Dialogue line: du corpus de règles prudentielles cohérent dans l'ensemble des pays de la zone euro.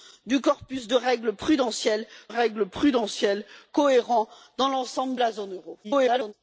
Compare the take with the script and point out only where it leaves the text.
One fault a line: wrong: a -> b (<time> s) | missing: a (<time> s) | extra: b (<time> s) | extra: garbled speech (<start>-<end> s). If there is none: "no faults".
extra: règles prudentielles (2.3 s)
missing: des pays de (5.2 s)
extra: garbled speech (5.8-6.3 s)